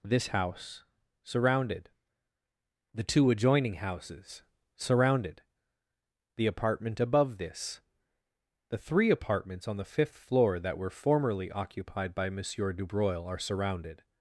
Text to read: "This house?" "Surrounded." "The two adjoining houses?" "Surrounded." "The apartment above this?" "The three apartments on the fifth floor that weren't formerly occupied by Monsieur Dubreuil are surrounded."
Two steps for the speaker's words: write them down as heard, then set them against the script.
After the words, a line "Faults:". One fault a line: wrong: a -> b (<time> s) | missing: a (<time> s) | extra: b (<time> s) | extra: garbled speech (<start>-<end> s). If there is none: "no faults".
"This house?" "Surrounded." "The two adjoining houses?" "Surrounded." "The apartment above this?" "The three apartments on the fifth floor that were formerly occupied by Monsieur Dubreuil are surrounded."
Faults:
wrong: weren't -> were (10.8 s)